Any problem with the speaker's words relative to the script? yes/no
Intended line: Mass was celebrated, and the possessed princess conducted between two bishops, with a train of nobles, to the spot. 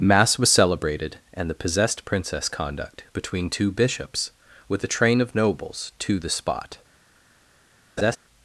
yes